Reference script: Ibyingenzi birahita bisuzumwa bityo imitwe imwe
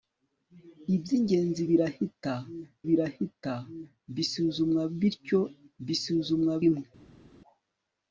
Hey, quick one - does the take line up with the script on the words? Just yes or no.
no